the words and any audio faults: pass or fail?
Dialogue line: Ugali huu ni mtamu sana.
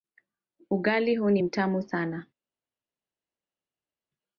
pass